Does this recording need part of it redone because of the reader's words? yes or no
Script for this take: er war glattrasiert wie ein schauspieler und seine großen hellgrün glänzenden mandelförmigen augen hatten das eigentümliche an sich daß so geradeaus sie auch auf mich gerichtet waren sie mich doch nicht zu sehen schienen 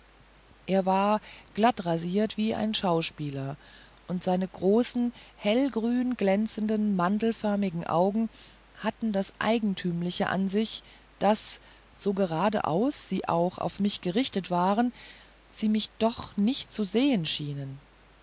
no